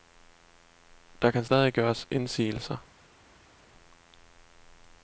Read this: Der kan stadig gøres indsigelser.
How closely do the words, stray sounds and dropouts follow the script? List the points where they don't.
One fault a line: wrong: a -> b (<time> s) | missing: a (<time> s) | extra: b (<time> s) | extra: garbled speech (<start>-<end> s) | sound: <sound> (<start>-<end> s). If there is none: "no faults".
no faults